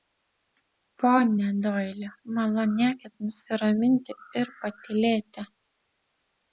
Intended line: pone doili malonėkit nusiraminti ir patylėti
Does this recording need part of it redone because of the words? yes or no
no